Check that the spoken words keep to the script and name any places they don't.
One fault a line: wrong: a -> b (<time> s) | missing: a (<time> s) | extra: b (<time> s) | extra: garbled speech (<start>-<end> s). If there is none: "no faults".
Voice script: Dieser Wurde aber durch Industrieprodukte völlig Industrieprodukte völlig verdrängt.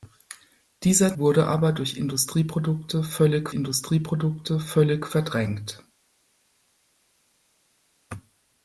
no faults